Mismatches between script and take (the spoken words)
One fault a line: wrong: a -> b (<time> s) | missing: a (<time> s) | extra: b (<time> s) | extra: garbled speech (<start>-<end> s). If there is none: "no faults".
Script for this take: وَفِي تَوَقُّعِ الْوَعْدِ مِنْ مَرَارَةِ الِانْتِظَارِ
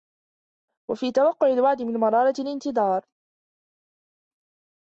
no faults